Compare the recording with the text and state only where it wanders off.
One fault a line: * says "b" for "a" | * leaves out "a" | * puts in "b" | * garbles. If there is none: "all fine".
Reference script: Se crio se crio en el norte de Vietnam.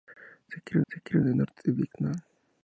all fine